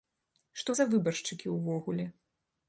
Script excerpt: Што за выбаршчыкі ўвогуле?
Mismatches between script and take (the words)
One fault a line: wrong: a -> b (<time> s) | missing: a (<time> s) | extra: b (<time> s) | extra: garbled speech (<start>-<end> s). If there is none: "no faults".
no faults